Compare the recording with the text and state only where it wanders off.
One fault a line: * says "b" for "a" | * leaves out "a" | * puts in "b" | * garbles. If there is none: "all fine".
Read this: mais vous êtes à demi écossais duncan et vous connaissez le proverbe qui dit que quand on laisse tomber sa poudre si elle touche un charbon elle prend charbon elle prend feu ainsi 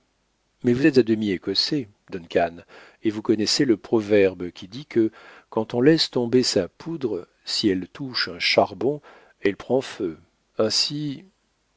* leaves out "charbon elle prend"